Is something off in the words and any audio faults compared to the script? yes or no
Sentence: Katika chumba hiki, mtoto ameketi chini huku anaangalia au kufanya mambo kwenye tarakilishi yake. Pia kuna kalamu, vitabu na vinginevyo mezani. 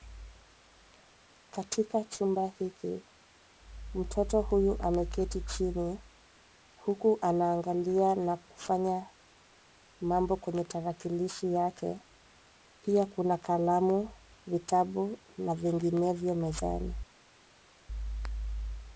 yes